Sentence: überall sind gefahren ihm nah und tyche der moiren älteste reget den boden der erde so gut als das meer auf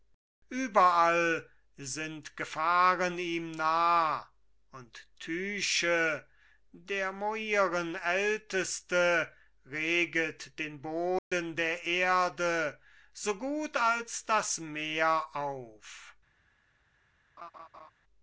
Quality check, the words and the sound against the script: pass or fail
fail